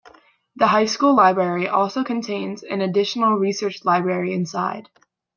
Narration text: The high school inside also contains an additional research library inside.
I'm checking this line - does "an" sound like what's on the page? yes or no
yes